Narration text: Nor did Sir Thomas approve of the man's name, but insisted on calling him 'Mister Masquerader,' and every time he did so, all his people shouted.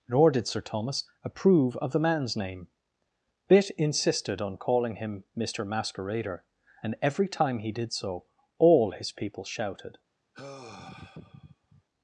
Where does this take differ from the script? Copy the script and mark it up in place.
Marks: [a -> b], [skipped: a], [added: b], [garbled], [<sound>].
Nor did Sir Thomas approve of the man's name, [but -> bit] insisted on calling him 'Mister Masquerader,' and every time he did so, all his people shouted. [sigh]